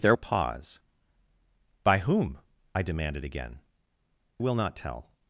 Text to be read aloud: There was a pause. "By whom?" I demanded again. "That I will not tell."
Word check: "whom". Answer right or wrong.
right